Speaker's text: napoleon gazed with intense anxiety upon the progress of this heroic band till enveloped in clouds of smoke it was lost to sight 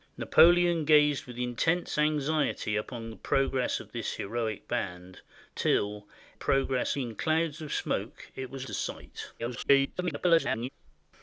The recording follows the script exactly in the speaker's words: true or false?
false